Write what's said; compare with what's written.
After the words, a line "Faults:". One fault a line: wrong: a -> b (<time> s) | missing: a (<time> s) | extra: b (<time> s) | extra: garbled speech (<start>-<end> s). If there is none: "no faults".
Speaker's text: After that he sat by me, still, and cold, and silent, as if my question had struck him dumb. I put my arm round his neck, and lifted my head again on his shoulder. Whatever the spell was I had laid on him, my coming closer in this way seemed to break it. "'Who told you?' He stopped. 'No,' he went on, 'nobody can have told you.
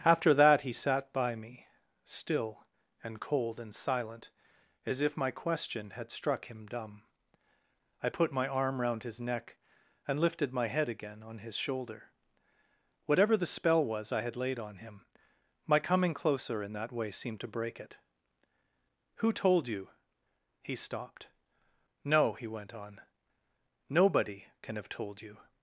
After that he sat by me, still, and cold, and silent, as if my question had struck him dumb. I put my arm round his neck, and lifted my head again on his shoulder. Whatever the spell was I had laid on him, my coming closer in that way seemed to break it. "'Who told you?' He stopped. 'No,' he went on, 'nobody can have told you.
Faults:
wrong: this -> that (16.7 s)